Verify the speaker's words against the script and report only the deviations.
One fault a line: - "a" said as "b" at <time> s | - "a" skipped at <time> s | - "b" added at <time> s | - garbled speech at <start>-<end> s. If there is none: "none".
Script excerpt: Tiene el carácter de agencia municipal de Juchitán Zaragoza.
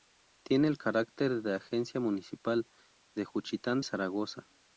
none